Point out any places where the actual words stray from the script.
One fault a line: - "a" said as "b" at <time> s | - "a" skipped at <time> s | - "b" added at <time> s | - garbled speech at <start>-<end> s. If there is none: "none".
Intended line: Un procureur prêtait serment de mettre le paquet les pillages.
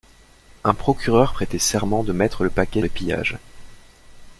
none